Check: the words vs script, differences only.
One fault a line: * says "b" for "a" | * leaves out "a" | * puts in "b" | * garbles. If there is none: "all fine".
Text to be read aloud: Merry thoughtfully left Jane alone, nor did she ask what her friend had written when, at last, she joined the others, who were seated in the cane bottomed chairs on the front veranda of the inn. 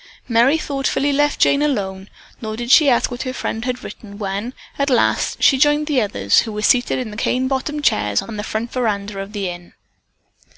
all fine